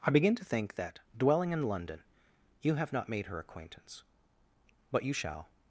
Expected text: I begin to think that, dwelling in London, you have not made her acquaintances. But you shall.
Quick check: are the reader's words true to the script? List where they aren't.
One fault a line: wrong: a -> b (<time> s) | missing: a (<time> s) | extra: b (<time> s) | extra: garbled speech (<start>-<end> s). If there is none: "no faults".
wrong: acquaintances -> acquaintance (3.4 s)